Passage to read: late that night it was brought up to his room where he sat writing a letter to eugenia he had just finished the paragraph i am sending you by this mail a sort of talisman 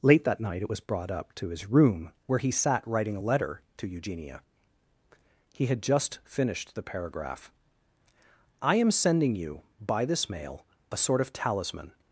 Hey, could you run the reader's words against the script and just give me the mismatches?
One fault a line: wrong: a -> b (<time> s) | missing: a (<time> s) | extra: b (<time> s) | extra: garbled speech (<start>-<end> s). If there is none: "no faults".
no faults